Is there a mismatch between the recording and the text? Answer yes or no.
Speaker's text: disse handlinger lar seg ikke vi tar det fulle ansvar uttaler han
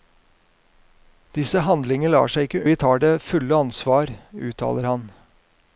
no